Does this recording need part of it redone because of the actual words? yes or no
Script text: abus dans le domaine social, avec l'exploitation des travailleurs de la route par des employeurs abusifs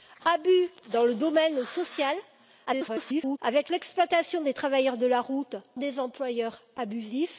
yes